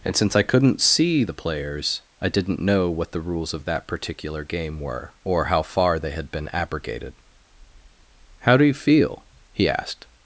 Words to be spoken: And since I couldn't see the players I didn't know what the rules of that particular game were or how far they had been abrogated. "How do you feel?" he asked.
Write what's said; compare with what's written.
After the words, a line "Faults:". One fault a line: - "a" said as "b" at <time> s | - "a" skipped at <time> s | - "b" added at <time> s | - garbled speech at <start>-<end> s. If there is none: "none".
And since I couldn't see the players I didn't know what the rules of that particular game were or how far they had been abrogated. "How do you feel?" he asked.
Faults:
none